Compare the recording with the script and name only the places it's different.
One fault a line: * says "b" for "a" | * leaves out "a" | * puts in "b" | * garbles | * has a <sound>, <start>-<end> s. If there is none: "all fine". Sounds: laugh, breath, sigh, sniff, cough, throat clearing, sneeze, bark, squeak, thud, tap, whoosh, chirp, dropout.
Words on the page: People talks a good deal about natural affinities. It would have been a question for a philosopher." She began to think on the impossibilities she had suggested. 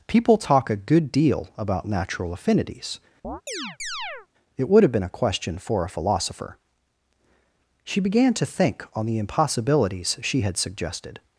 * says "talk" for "talks"
* has a chirp, 3.2-4.3 s